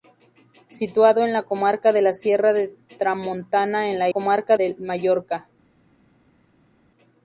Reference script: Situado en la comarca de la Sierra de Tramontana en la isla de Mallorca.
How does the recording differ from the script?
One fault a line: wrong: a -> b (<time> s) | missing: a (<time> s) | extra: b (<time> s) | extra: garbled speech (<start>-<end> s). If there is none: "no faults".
wrong: isla -> comarca (4.1 s)